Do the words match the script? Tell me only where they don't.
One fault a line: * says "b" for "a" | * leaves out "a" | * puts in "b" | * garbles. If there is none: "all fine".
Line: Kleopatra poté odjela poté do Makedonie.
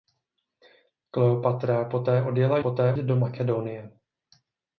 all fine